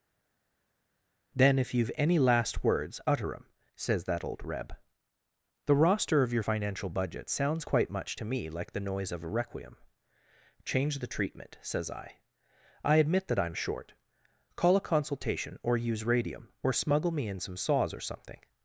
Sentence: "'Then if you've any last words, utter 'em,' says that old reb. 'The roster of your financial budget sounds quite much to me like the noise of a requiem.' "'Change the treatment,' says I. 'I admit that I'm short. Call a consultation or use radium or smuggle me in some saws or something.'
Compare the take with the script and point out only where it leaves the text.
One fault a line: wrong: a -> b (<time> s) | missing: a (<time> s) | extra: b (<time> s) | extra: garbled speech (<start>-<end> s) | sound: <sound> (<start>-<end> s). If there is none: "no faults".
no faults